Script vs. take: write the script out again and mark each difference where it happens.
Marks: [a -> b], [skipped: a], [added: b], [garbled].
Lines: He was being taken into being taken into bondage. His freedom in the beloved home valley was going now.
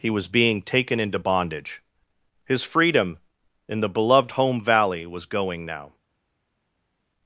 He was being taken into [skipped: being taken into] bondage. His freedom in the beloved home valley was going now.